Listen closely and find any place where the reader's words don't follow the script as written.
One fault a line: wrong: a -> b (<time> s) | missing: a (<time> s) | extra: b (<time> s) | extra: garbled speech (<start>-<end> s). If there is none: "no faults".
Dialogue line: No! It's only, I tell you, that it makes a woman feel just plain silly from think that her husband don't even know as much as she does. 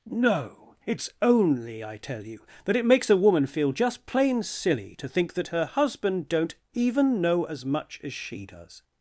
wrong: from -> to (5.0 s)